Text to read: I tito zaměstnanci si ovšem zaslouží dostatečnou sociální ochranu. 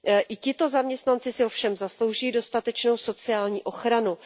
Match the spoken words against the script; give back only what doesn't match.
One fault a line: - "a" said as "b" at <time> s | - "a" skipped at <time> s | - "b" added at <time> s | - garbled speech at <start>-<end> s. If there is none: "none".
none